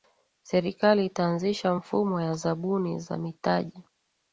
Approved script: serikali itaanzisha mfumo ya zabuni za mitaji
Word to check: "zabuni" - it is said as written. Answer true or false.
true